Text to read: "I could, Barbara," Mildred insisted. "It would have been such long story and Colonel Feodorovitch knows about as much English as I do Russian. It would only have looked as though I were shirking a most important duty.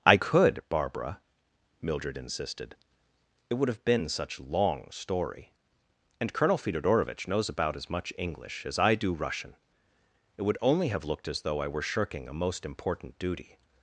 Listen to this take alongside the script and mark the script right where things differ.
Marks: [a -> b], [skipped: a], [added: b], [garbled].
"I could, Barbara," Mildred insisted. "It would have been such long story and Colonel Feodorovitch knows about as much English as I do Russian. It would only have looked as though I were shirking a most important duty.